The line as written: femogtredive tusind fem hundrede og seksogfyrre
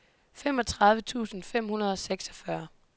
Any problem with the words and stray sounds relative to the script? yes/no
no